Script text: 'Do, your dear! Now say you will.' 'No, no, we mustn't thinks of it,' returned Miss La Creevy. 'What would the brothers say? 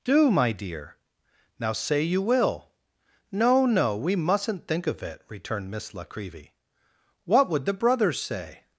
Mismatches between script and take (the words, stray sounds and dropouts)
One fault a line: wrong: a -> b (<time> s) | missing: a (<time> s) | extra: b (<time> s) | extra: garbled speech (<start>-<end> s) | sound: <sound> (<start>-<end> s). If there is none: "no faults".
wrong: your -> my (0.3 s)
wrong: thinks -> think (4.7 s)